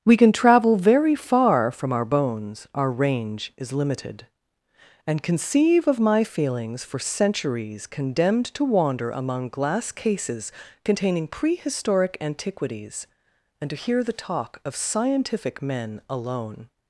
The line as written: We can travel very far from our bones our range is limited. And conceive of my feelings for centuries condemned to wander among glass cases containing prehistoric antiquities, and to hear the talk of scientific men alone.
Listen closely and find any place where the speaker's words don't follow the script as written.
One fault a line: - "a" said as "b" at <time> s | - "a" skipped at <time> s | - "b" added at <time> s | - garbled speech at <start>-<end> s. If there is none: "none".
none